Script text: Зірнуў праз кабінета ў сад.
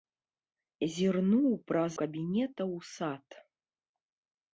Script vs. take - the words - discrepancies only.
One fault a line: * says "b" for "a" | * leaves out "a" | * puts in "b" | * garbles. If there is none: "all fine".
all fine